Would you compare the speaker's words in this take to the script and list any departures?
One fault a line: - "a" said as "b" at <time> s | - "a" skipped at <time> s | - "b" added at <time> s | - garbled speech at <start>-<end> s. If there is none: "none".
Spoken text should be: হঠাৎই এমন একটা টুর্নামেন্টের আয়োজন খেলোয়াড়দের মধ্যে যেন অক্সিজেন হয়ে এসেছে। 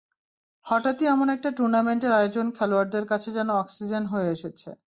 - "মধ্যে" said as "কাছে" at 3.1 s